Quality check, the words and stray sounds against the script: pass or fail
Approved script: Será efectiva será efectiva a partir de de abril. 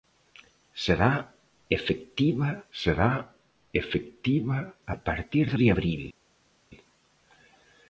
pass